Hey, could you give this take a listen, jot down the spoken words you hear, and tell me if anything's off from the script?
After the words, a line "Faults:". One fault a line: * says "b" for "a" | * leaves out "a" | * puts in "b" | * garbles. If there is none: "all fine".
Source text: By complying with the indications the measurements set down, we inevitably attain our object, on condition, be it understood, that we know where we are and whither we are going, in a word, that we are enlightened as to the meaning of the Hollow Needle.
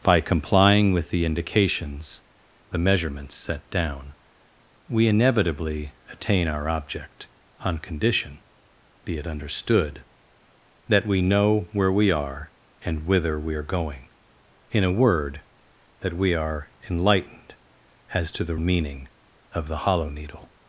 By complying with the indications the measurements set down, we inevitably attain our object, on condition, be it understood, that we know where we are and whither we are going, in a word, that we are enlightened as to the meaning of the Hollow Needle.
Faults:
all fine